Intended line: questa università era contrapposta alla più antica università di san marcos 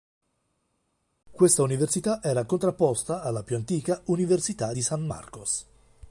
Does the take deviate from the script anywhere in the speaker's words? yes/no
no